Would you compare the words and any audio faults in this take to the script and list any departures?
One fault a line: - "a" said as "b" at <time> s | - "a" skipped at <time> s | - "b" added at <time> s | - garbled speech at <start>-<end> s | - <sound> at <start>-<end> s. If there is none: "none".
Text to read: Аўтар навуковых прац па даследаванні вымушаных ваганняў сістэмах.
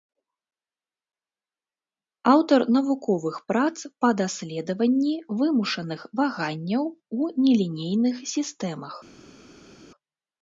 - "у нелінейных" added at 7.2 s